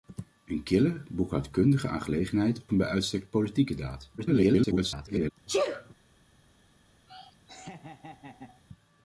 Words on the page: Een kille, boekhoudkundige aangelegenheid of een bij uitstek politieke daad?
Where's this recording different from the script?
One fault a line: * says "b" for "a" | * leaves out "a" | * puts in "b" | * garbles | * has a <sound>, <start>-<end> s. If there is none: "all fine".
* leaves out "of"
* garbles
* has a sneeze, 5.5-5.9 s
* has a laugh, 7.1-8.6 s